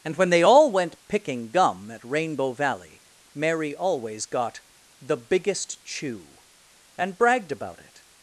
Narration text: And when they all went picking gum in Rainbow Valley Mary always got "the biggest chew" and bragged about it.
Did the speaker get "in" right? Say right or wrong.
wrong